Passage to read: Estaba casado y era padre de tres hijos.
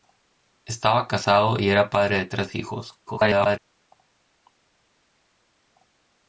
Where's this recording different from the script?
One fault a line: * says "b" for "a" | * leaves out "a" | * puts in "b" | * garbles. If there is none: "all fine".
* garbles